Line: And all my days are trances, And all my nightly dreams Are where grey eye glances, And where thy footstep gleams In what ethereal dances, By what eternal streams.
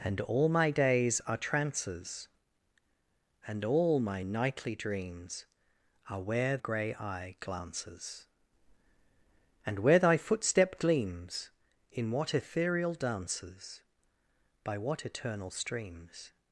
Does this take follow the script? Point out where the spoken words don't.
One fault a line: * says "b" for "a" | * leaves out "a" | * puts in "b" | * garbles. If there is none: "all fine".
all fine